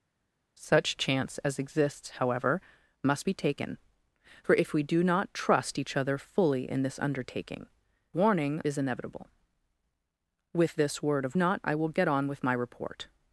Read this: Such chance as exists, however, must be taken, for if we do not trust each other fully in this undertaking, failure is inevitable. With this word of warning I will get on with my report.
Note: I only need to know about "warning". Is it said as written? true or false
false